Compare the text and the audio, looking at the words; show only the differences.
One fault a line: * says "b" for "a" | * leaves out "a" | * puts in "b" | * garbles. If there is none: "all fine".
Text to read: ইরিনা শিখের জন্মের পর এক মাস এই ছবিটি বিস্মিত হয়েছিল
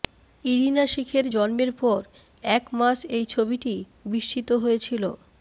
all fine